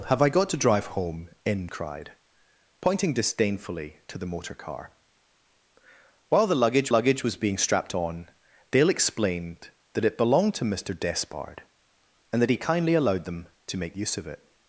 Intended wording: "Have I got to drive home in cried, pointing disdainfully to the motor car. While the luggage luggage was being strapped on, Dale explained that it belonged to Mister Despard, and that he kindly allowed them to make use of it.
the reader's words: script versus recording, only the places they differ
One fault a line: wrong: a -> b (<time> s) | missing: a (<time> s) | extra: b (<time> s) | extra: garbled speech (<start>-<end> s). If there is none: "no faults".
no faults